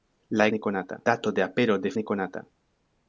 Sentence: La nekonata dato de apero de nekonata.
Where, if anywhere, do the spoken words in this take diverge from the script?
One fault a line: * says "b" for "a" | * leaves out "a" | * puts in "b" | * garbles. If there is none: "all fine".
all fine